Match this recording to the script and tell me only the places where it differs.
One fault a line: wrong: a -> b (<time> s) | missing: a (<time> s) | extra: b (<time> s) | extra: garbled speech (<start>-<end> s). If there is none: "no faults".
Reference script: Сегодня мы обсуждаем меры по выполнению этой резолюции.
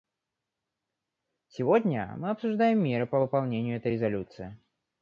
no faults